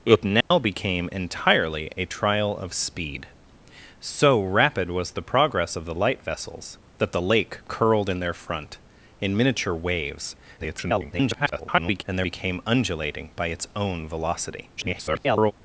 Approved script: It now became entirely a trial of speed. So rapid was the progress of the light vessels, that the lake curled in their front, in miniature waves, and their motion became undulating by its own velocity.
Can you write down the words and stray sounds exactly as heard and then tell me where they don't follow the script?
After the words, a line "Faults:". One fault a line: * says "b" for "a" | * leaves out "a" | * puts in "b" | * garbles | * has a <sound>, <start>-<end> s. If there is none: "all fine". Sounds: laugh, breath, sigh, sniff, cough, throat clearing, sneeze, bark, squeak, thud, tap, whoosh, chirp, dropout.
It now became entirely a trial of speed. So rapid was the progress of the light vessels, that the lake curled in their front, in miniature waves, [garbled] and their became undulating by its own velocity. [garbled]
Faults:
* has a dropout, 0.4-0.5 s
* garbles
* leaves out "motion"
* garbles